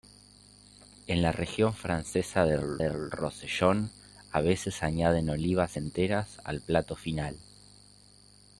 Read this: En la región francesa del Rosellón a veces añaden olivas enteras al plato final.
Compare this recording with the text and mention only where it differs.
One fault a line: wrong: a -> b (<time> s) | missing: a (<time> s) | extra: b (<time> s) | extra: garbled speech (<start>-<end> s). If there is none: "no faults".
extra: del (2.8 s)